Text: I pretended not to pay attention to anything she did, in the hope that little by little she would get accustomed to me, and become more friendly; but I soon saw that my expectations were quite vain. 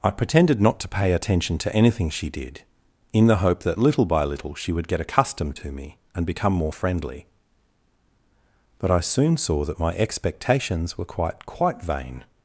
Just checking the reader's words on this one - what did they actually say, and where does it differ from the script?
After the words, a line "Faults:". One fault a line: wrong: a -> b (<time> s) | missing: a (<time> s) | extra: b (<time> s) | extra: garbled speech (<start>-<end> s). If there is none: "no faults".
I pretended not to pay attention to anything she did, in the hope that little by little she would get accustomed to me, and become more friendly; but I soon saw that my expectations were quite quite vain.
Faults:
extra: quite (11.5 s)